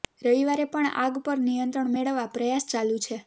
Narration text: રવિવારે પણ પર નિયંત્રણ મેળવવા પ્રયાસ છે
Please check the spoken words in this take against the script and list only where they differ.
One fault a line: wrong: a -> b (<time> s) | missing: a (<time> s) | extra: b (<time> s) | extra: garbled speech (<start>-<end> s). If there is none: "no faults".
extra: આગ (1.0 s)
extra: ચાલુ (2.7 s)